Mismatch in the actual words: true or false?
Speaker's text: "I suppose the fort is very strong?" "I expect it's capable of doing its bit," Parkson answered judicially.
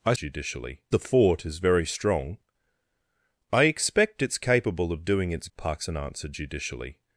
true